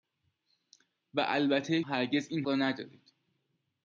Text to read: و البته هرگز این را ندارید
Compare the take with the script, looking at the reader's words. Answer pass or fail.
pass